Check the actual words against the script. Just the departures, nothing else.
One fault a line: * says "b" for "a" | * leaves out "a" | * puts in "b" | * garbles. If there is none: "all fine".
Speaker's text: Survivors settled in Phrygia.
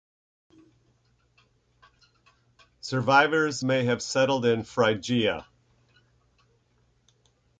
* puts in "may have"